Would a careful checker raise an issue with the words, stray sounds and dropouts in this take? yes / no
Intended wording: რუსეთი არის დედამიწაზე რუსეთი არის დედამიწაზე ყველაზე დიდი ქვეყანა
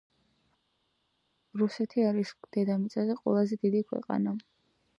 yes